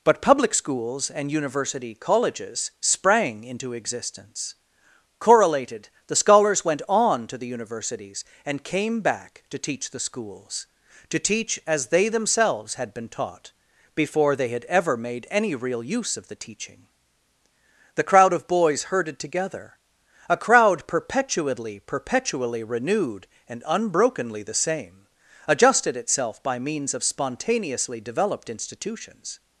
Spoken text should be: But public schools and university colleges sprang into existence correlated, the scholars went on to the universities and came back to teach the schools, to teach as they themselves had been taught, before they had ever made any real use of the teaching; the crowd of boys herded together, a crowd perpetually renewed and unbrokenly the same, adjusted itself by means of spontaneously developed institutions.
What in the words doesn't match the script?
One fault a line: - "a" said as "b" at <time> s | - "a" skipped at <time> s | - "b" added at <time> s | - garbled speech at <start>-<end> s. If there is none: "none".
- "perpetually" added at 21.8 s